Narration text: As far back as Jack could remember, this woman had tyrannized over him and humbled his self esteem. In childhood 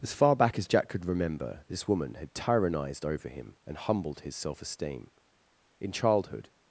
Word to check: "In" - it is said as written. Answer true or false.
true